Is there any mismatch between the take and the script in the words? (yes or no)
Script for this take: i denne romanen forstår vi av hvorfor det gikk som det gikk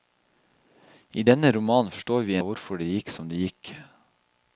no